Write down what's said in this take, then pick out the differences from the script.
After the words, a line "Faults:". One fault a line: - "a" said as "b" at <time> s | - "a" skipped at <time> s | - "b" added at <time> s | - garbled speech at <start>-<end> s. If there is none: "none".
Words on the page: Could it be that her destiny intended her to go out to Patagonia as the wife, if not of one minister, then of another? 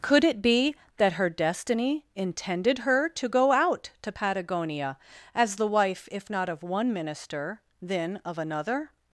Could it be that her destiny intended her to go out to Patagonia as the wife, if not of one minister, then of another?
Faults:
none